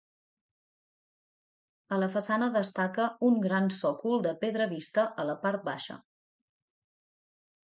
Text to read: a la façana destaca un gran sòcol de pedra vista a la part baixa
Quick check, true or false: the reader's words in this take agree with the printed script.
true